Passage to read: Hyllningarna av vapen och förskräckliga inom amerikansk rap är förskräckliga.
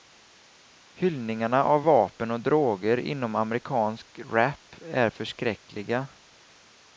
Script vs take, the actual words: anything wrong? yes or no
yes